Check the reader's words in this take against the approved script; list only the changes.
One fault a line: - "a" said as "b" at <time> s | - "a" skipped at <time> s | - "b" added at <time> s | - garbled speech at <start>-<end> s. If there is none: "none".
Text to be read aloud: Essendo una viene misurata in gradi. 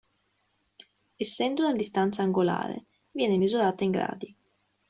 - "distanza angolare" added at 1.8 s